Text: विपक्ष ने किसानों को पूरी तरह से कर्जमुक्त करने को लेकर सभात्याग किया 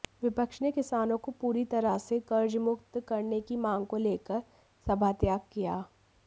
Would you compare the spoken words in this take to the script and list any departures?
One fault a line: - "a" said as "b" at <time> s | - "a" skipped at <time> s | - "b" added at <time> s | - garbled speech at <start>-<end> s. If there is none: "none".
- "की मांग" added at 3.4 s